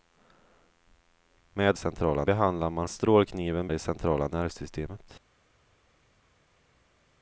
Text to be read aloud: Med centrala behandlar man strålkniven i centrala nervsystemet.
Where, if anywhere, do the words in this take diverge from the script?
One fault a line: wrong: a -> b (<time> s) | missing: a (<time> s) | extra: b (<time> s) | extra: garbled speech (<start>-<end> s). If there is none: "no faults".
no faults